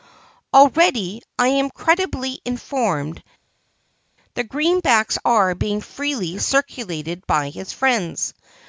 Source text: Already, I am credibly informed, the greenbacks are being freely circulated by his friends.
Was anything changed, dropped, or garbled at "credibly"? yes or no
no